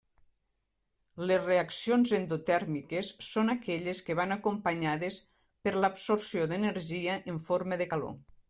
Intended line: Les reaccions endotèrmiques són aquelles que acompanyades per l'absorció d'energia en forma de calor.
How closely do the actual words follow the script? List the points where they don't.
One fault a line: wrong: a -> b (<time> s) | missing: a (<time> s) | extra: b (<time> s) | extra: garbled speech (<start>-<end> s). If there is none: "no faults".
extra: van (4.2 s)